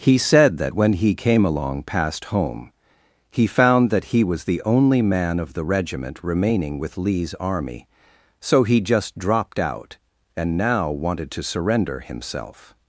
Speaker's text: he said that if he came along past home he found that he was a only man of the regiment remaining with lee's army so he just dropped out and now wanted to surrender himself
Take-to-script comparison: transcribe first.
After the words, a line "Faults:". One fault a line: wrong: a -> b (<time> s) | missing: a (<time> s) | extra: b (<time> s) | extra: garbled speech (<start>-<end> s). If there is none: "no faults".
he said that when he came along past home he found that he was the only man of the regiment remaining with lee's army so he just dropped out and now wanted to surrender himself
Faults:
wrong: if -> when (0.7 s)
wrong: a -> the (4.4 s)